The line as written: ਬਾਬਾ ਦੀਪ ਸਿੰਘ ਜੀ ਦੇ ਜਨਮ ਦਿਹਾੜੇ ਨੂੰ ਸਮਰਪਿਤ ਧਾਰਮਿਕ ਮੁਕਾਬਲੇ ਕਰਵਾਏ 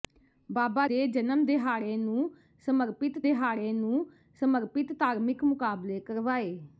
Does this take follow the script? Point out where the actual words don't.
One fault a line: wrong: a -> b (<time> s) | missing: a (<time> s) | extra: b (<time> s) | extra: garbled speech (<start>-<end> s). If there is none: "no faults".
wrong: ਦੀਪ ਸਿੰਘ ਜੀ ਦੇ ਜਨਮ -> ਦੇ ਜਨਮ ਦਿਹਾੜੇ ਨੂੰ ਸਮਰਪਿਤ (0.9 s)